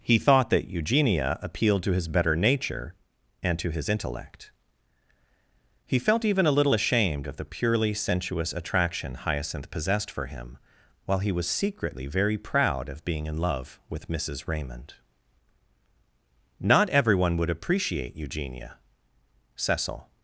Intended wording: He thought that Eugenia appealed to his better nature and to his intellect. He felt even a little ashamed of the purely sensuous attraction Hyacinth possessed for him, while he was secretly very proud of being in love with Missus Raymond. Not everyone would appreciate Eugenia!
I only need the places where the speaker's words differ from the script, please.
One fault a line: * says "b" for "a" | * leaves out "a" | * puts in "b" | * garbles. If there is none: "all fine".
* puts in "Cecil"